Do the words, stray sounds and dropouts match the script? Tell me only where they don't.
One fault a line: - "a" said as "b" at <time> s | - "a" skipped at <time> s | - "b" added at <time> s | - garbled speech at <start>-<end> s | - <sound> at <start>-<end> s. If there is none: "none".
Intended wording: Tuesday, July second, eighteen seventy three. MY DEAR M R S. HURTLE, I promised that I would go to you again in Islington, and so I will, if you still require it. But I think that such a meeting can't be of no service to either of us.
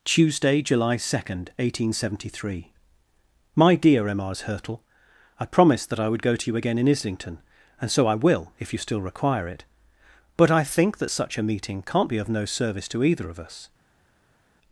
none